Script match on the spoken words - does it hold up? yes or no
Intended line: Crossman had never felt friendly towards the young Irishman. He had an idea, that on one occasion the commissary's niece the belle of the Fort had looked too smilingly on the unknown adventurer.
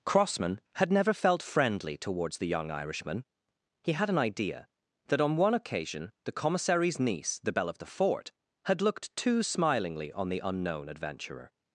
yes